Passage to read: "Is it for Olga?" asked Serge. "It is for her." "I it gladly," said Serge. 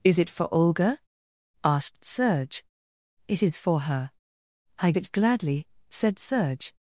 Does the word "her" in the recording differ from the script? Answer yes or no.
no